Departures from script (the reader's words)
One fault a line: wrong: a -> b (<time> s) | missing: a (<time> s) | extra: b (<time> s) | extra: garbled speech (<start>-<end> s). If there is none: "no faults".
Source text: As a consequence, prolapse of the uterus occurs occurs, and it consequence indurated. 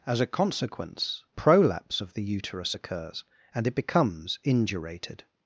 missing: occurs (3.2 s)
wrong: consequence -> becomes (3.7 s)